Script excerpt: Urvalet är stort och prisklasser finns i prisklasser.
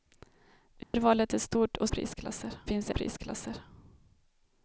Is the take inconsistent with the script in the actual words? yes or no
no